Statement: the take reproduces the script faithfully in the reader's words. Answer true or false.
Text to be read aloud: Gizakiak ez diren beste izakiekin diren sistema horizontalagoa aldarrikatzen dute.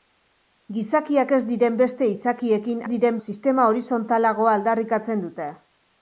true